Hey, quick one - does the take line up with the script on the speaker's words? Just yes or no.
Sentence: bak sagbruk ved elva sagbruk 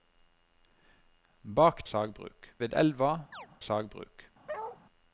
yes